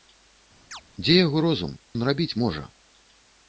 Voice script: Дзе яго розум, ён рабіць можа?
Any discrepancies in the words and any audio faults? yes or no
yes